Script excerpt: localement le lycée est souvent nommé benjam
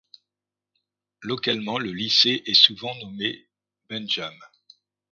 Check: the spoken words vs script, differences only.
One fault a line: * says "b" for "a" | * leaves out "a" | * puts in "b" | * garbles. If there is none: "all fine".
all fine